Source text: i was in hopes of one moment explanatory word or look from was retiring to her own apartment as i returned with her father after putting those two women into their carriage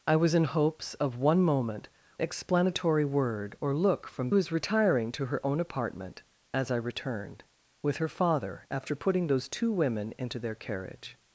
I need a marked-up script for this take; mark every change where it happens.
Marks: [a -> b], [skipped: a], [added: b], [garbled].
i was in hopes of one moment explanatory word or look from was retiring to her own apartment as i returned with her father after putting those two women into their carriage